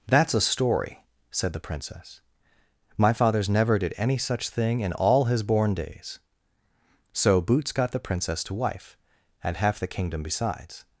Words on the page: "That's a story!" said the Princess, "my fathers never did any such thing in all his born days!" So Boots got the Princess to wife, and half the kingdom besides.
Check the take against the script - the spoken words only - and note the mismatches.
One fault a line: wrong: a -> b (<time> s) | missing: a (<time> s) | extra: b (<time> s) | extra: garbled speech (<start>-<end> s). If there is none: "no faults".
no faults